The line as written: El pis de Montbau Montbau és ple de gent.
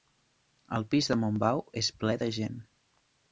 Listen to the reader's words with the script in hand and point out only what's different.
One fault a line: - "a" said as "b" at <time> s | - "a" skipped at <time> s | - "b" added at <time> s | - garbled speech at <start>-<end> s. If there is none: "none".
- "Montbau" skipped at 1.6 s